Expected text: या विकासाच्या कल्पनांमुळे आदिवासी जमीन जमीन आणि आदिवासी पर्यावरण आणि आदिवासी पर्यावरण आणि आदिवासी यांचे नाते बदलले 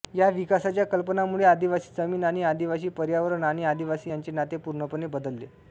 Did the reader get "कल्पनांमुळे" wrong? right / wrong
right